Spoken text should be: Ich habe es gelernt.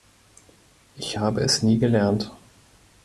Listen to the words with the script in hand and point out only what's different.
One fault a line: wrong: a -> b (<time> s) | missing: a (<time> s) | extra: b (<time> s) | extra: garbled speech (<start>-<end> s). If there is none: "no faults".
extra: nie (1.6 s)